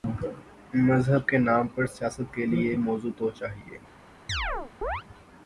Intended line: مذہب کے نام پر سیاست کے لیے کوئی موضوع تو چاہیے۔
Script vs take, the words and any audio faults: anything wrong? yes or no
yes